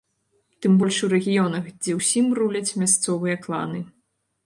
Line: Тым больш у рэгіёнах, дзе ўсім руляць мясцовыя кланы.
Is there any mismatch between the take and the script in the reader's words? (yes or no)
no